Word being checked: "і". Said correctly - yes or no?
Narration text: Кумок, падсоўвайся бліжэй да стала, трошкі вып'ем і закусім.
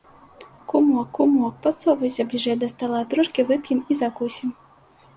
yes